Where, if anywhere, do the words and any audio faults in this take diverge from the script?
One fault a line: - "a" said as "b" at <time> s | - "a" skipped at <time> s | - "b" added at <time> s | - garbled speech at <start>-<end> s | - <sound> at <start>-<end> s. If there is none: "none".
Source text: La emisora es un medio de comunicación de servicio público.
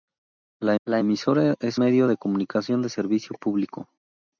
- "la" added at 0.8 s
- "un" skipped at 1.8 s